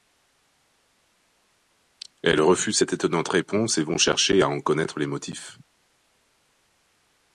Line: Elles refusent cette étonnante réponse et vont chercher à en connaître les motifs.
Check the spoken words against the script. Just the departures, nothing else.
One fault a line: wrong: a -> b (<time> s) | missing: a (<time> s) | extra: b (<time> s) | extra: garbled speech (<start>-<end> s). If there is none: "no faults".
no faults